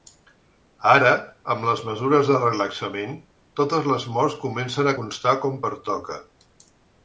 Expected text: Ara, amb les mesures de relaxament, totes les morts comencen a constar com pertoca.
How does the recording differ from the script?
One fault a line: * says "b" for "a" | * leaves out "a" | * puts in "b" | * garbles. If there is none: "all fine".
all fine